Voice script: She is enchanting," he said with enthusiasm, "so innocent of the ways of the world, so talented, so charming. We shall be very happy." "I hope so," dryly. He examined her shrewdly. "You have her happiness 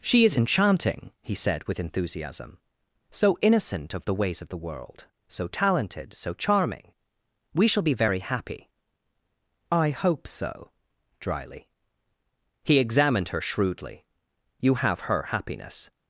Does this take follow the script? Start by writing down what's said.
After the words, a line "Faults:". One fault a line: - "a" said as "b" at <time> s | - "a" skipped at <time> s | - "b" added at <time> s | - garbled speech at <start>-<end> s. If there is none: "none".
She is enchanting," he said with enthusiasm, "so innocent of the ways of the world, so talented, so charming. We shall be very happy." "I hope so," dryly. He examined her shrewdly. "You have her happiness
Faults:
none